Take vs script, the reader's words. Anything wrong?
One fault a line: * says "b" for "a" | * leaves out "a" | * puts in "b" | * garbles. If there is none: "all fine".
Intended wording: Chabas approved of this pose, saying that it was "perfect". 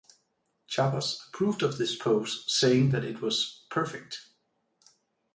all fine